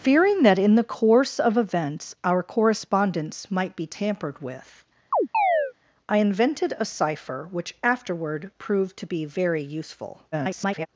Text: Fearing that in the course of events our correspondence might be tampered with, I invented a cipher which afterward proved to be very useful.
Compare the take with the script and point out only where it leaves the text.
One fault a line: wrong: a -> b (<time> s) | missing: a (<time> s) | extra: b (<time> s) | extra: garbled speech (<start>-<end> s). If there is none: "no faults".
extra: garbled speech (10.3-10.9 s)